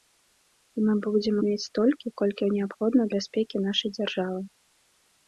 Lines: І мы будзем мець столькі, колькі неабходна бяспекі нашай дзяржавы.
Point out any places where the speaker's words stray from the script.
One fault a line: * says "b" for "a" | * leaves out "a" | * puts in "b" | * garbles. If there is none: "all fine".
all fine